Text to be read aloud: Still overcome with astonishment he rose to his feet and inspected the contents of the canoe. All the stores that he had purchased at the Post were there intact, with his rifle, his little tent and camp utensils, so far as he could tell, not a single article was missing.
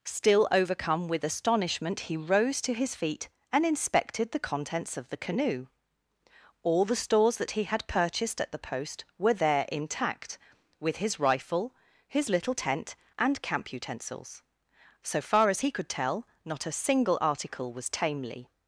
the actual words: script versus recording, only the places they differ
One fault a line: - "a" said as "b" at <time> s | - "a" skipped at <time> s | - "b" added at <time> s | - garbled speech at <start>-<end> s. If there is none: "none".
- "missing" said as "tamely" at 17.9 s